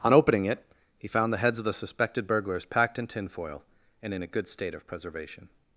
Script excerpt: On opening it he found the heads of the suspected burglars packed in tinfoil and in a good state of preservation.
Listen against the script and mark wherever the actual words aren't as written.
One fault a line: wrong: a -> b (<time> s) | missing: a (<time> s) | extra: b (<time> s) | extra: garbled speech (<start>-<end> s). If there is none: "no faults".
no faults